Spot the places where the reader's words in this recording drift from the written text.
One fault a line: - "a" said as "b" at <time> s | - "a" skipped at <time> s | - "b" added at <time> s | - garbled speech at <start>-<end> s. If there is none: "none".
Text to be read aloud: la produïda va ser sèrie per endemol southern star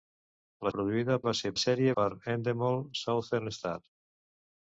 none